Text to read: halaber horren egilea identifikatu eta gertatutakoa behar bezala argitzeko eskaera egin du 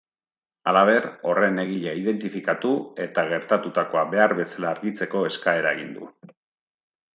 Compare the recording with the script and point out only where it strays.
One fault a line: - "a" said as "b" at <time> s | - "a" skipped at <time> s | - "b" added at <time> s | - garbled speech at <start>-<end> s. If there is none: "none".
none